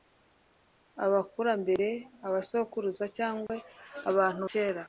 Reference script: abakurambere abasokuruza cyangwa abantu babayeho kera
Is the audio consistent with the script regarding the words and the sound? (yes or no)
no